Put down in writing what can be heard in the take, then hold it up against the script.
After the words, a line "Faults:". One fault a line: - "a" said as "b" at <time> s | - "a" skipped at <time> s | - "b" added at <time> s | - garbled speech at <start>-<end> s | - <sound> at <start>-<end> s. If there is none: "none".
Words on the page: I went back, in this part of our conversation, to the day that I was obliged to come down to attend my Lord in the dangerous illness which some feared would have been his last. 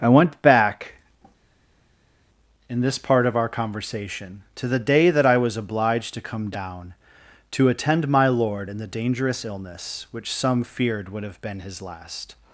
I went back, in this part of our conversation, to the day that I was obliged to come down to attend my Lord in the dangerous illness which some feared would have been his last.
Faults:
none